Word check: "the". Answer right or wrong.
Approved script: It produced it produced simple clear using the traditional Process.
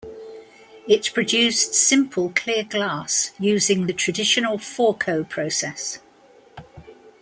right